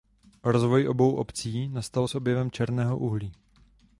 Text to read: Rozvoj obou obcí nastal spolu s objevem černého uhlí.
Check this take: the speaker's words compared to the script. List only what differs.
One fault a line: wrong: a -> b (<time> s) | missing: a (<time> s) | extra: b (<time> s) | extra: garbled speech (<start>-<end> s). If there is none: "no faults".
missing: spolu (2.1 s)